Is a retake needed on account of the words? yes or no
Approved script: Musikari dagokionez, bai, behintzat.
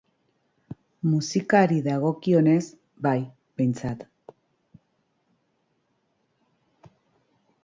no